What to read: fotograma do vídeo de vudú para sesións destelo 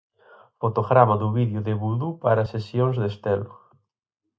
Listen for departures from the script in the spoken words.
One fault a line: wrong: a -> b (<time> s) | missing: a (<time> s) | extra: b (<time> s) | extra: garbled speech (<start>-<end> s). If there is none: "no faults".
no faults